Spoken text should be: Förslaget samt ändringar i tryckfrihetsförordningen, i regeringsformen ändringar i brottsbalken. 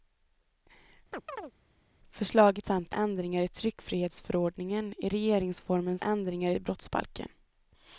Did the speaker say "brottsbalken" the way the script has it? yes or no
yes